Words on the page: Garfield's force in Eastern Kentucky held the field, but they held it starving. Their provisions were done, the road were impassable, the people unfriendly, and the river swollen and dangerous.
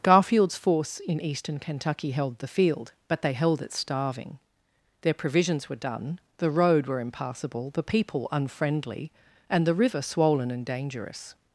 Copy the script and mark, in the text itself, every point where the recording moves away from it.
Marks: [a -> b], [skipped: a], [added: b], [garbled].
Garfield's force in Eastern Kentucky held the field, but they held it starving. Their provisions were done, the road were impassable, the people unfriendly, and the river swollen and dangerous.